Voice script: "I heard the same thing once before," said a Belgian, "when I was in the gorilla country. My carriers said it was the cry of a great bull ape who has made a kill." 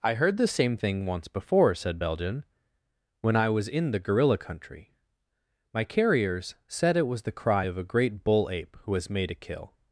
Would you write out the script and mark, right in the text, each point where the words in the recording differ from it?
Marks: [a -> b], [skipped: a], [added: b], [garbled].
"I heard the same thing once before," said [skipped: a] Belgian, "when I was in the gorilla country. My carriers said it was the cry of a great bull ape who has made a kill."